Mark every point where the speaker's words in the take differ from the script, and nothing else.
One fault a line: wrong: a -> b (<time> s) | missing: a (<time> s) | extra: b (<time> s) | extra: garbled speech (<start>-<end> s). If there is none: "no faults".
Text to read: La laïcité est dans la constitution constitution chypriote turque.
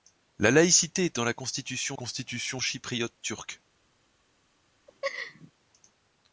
no faults